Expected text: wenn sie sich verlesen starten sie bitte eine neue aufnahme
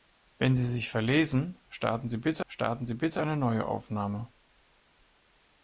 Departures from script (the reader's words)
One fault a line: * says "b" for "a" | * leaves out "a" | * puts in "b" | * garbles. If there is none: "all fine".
* puts in "starten sie bitte"